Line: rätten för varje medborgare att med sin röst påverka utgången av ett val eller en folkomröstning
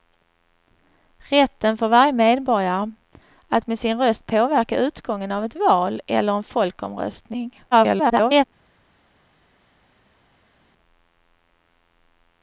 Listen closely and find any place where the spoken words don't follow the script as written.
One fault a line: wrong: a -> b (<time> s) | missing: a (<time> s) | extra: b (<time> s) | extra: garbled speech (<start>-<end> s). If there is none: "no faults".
extra: garbled speech (7.7-8.4 s)